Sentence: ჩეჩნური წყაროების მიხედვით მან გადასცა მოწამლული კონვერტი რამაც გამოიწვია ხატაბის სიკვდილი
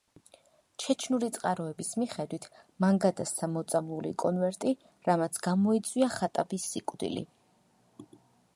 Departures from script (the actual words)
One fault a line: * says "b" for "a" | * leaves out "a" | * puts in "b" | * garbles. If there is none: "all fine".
all fine